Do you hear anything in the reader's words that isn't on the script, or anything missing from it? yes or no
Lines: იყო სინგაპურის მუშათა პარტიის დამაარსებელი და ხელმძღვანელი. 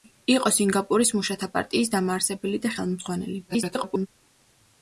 yes